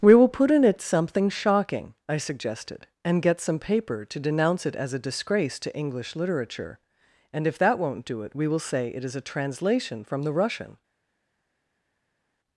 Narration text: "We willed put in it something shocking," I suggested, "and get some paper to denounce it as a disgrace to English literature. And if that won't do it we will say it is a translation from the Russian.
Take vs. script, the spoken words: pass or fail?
fail